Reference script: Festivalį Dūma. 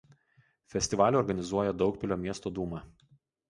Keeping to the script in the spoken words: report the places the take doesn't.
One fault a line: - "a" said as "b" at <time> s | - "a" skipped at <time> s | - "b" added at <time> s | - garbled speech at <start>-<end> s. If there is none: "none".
- "organizuoja Daugpilio miesto" added at 1.2 s